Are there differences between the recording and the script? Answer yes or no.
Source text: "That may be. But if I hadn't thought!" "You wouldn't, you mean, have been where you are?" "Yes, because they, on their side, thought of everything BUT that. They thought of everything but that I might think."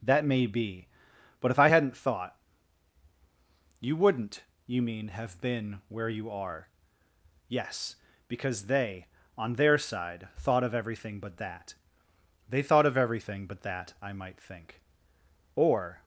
yes